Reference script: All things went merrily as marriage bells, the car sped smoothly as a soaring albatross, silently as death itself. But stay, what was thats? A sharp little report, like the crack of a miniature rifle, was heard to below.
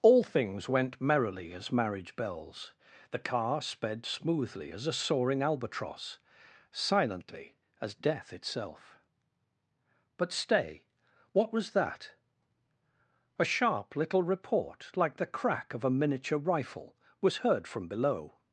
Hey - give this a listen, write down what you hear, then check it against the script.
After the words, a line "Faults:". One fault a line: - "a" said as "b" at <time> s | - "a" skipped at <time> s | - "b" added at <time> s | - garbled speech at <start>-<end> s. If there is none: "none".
All things went merrily as marriage bells, the car sped smoothly as a soaring albatross, silently as death itself. But stay, what was that? A sharp little report, like the crack of a miniature rifle, was heard from below.
Faults:
- "thats" said as "that" at 11.7 s
- "to" said as "from" at 17.7 s